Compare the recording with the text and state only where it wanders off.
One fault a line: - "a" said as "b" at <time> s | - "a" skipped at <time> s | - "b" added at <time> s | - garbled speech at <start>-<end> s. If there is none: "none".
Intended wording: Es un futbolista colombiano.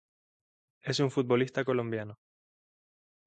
none